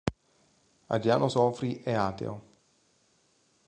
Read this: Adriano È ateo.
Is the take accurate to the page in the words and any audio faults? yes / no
no